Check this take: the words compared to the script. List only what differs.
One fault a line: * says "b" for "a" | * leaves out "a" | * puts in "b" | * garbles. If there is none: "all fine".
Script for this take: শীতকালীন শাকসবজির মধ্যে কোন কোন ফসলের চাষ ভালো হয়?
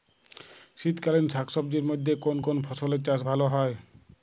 all fine